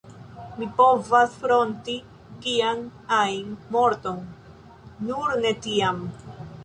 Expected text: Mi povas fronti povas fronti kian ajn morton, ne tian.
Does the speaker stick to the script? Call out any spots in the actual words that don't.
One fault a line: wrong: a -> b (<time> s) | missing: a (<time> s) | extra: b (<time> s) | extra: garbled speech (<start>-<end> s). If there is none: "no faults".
missing: povas fronti (2.0 s)
extra: nur (5.1 s)